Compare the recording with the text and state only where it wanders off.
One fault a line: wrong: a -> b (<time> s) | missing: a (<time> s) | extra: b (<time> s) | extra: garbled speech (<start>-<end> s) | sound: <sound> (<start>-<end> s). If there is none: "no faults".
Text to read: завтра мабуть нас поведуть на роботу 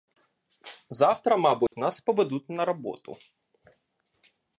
sound: dropout (1.7-1.7 s)